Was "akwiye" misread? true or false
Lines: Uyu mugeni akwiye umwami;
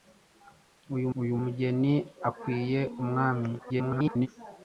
false